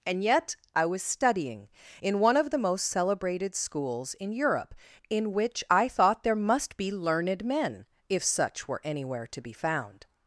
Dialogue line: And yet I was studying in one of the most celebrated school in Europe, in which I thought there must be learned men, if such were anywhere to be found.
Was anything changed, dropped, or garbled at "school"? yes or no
yes